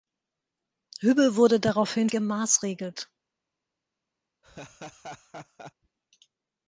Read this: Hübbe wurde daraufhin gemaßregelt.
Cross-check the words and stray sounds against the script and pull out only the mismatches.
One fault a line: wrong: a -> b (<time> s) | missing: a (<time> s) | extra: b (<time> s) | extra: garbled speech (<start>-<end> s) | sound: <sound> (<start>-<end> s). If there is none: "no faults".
sound: laugh (4.4-5.7 s)